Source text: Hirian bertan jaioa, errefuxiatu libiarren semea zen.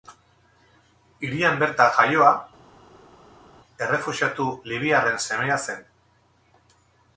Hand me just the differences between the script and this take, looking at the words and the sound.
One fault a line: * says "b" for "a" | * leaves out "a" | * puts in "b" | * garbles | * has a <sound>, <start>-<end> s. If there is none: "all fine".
all fine